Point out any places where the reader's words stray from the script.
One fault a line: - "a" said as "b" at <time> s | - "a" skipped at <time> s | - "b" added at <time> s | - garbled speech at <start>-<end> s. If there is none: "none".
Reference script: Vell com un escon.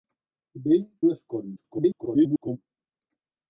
- "com" skipped at 0.9 s
- garbled speech at 1.6-2.6 s